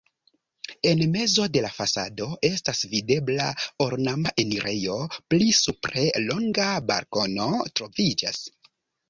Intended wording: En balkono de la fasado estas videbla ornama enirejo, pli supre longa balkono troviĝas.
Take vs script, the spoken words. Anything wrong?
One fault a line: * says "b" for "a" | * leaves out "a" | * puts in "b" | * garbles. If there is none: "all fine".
* says "mezo" for "balkono"